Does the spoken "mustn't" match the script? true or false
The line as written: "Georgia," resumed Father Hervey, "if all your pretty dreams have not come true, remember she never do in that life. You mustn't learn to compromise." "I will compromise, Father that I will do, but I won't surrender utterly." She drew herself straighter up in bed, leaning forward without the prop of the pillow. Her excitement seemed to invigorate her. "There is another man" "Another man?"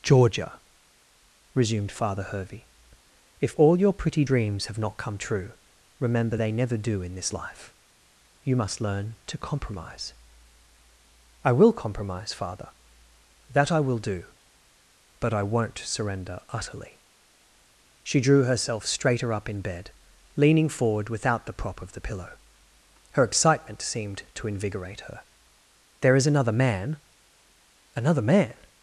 false